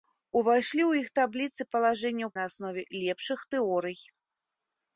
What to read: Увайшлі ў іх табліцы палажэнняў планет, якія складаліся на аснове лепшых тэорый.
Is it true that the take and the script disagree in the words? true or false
true